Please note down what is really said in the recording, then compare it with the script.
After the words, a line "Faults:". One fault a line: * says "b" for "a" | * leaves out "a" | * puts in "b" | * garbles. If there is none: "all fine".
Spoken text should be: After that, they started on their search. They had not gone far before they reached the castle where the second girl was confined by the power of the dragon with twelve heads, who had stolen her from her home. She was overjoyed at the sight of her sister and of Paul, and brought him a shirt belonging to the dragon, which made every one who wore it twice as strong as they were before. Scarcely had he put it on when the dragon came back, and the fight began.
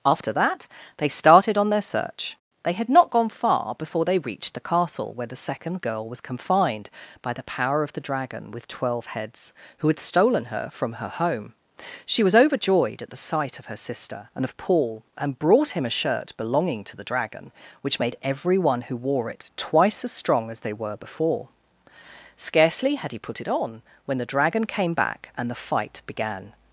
After that, they started on their search. They had not gone far before they reached the castle where the second girl was confined by the power of the dragon with twelve heads, who had stolen her from her home. She was overjoyed at the sight of her sister and of Paul, and brought him a shirt belonging to the dragon, which made every one who wore it twice as strong as they were before. Scarcely had he put it on when the dragon came back, and the fight began.
Faults:
all fine